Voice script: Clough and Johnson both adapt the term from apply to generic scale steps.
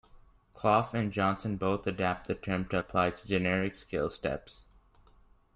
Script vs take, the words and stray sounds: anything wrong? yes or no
yes